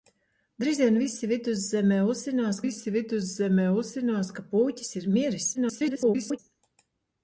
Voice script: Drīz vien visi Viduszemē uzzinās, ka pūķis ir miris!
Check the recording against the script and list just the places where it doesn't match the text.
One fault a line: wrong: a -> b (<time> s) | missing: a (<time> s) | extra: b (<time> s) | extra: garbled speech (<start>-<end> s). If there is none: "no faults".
extra: visi Viduszemē uzzinās (2.6 s)
extra: garbled speech (5.5-6.4 s)